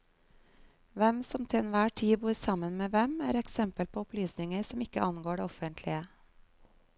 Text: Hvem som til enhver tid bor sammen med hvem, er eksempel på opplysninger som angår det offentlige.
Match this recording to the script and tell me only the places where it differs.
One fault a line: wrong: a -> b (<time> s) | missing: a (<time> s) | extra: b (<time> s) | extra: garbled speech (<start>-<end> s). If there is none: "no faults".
extra: ikke (4.9 s)